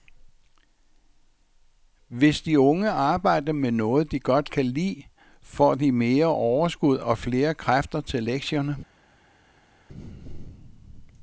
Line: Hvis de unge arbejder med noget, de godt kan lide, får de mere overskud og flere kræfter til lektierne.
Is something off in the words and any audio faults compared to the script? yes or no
no